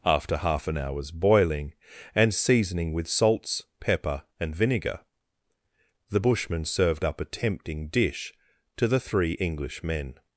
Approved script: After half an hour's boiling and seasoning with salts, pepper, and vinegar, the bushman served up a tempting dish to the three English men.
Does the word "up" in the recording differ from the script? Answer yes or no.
no